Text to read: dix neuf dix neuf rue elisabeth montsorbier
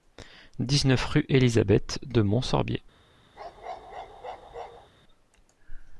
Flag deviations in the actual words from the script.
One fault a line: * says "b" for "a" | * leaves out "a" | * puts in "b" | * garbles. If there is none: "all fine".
* leaves out "dix neuf"
* puts in "de"